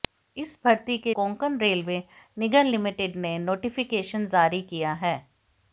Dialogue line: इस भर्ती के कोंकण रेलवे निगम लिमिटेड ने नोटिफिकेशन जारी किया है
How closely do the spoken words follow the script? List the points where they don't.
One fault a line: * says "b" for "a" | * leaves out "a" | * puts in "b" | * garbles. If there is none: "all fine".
all fine